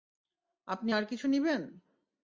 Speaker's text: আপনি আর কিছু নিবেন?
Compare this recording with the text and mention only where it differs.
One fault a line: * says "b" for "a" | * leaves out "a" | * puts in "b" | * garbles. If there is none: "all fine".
all fine